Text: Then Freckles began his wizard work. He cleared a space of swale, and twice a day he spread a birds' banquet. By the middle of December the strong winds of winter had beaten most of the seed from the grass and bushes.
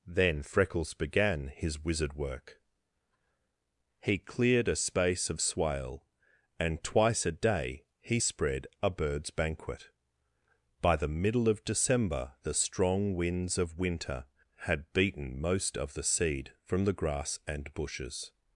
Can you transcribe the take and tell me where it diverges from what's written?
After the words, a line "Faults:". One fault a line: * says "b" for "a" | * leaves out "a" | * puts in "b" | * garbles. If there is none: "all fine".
Then Freckles began his wizard work. He cleared a space of swale, and twice a day he spread a birds' banquet. By the middle of December the strong winds of winter had beaten most of the seed from the grass and bushes.
Faults:
all fine